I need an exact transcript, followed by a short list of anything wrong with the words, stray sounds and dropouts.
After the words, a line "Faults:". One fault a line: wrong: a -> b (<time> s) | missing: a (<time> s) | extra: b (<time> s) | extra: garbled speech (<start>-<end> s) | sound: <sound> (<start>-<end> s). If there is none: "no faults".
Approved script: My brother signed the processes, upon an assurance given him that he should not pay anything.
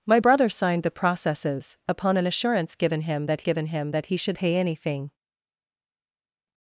My brother signed the processes, upon an assurance given him that given him that he should pay anything.
Faults:
extra: given him that (3.4 s)
missing: not (4.4 s)